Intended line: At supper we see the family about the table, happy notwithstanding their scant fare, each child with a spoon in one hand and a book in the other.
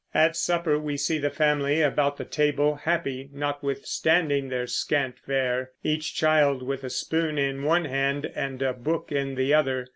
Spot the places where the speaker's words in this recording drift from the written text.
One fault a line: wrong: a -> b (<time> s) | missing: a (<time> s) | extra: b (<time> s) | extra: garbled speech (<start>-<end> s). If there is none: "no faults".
no faults